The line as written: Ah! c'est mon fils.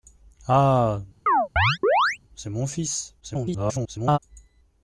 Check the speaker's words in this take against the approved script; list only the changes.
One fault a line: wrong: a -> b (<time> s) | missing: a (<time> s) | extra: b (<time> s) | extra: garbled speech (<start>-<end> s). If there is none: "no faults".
extra: garbled speech (3.2-4.2 s)